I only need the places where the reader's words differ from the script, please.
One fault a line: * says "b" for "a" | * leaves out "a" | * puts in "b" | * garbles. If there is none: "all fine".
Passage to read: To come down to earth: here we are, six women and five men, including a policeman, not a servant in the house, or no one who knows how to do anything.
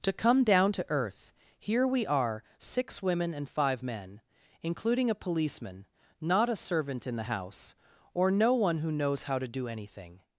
all fine